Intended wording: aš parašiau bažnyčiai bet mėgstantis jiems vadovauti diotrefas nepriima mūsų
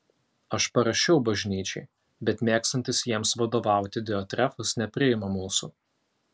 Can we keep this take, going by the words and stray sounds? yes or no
yes